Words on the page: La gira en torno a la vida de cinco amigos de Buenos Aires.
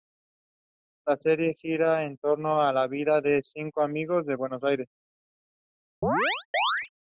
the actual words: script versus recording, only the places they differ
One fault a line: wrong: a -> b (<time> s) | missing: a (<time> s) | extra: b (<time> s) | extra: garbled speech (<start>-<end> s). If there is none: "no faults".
extra: serie (1.2 s)